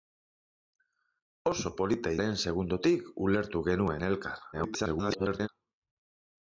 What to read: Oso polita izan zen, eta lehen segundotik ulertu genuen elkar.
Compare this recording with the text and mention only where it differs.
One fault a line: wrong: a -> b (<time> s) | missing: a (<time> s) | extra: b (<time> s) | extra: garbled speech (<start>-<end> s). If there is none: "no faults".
missing: izan zen eta (2.1 s)
extra: garbled speech (4.5-5.5 s)